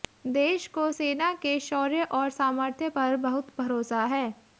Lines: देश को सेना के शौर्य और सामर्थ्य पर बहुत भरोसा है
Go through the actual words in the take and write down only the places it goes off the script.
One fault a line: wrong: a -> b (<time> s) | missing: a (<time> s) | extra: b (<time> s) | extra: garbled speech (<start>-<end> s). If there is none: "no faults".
no faults